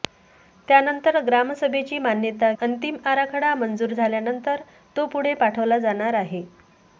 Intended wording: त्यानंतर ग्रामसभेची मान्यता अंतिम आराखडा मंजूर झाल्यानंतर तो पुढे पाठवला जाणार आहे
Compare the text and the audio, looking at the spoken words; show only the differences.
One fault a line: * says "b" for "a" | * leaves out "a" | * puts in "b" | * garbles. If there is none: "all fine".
all fine